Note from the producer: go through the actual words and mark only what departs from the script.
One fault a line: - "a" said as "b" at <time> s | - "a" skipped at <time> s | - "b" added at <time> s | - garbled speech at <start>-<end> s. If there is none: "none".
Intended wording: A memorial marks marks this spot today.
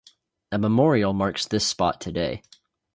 - "marks" skipped at 1.4 s